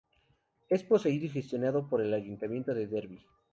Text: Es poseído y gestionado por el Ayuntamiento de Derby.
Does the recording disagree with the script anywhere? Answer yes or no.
no